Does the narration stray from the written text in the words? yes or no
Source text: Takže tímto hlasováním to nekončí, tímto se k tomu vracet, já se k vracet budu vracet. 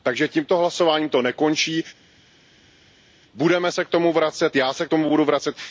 yes